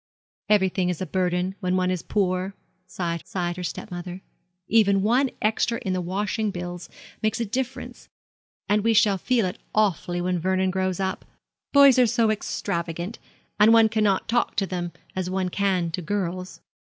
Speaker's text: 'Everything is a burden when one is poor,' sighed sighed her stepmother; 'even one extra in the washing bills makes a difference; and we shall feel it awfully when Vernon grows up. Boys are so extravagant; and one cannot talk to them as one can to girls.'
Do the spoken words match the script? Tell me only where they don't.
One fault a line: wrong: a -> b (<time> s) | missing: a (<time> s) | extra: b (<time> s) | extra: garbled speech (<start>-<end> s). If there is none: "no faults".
no faults